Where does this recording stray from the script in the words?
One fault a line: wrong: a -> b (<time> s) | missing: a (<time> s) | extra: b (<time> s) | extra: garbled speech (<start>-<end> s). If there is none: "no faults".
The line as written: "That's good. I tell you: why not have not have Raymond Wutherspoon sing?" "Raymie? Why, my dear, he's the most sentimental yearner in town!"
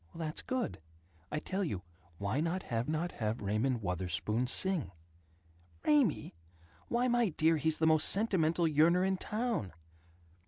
no faults